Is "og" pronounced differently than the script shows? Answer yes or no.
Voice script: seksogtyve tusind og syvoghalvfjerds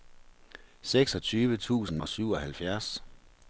no